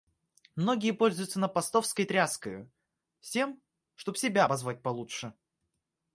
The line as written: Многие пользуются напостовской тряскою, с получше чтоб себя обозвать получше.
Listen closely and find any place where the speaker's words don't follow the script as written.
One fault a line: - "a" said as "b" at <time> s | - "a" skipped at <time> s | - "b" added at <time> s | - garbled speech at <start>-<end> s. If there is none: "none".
- "получше" said as "тем" at 3.3 s